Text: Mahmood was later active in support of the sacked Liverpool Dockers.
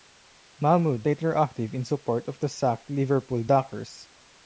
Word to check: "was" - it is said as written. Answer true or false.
false